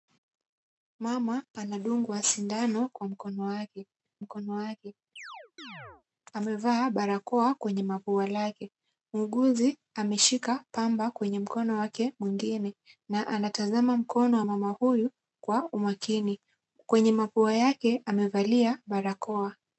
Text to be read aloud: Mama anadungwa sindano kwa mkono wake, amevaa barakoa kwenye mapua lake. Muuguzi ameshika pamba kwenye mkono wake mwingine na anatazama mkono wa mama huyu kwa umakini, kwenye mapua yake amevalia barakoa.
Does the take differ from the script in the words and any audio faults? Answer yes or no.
yes